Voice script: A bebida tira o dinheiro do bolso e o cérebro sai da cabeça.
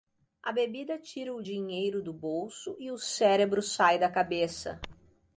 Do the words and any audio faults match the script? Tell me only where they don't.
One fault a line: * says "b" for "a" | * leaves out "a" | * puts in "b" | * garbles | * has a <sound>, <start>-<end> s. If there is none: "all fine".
all fine